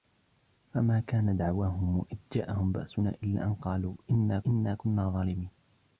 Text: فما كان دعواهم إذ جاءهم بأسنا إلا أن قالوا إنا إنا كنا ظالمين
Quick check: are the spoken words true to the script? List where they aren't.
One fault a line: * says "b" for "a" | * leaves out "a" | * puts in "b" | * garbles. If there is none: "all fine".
all fine